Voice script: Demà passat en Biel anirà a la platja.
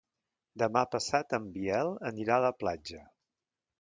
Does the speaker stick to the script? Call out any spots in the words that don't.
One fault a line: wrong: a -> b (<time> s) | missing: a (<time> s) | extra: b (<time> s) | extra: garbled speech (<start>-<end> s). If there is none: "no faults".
no faults